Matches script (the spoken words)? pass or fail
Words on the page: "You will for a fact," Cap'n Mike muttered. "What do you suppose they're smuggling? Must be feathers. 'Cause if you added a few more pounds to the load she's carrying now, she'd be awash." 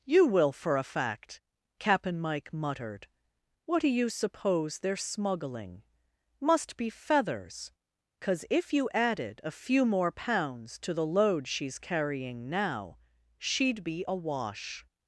pass